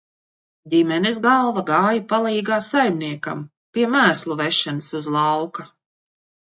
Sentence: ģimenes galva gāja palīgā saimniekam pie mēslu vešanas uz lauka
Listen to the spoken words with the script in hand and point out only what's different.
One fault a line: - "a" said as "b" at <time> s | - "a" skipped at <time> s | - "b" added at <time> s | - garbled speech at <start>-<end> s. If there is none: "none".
none